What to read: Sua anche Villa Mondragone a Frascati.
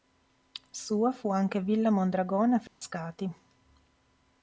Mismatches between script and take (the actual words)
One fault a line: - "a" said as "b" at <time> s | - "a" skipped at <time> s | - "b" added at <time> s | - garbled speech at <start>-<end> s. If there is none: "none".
- "fu" added at 1.1 s